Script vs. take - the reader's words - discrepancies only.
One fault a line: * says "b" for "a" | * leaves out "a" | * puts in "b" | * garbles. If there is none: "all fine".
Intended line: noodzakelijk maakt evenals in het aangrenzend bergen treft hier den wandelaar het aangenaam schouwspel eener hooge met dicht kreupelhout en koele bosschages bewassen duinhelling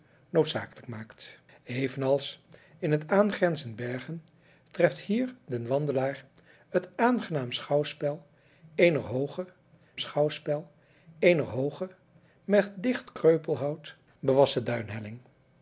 * puts in "schouwspel eener hooge"
* leaves out "en koele bosschages"